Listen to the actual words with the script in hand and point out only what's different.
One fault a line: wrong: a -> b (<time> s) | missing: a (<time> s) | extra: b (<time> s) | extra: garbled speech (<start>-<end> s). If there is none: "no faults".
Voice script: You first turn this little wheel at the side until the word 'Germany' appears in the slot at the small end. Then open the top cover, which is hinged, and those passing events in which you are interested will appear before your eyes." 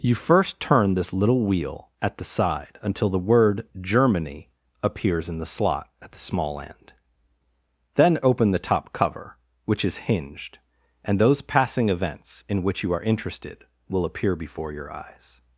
no faults